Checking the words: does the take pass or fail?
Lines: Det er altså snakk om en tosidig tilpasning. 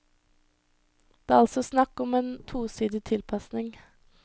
pass